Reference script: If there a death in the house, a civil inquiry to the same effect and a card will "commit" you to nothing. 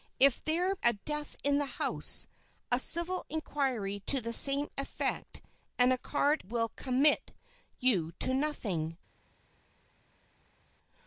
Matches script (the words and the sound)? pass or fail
pass